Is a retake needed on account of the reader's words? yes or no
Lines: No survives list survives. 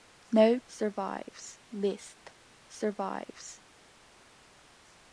no